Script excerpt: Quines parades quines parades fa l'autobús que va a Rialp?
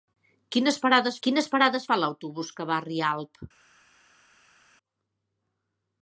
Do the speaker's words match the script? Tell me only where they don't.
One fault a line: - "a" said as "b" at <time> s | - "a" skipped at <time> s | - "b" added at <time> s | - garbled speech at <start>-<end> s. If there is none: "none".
none